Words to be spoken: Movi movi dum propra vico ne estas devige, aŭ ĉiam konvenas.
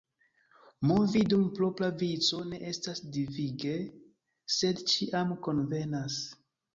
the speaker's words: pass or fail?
fail